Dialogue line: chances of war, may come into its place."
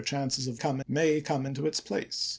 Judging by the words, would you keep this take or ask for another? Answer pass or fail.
fail